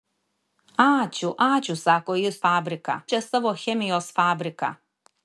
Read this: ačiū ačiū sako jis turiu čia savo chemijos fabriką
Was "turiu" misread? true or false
true